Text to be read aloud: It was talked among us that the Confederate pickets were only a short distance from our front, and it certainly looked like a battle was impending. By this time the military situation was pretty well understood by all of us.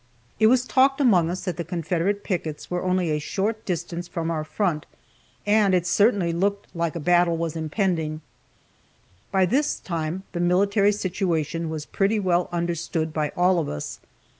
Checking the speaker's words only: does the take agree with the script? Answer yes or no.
yes